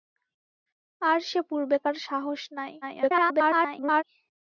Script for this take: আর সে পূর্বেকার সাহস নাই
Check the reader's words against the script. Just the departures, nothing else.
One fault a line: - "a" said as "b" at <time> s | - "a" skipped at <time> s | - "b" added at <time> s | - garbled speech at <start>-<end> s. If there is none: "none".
- garbled speech at 2.8-4.0 s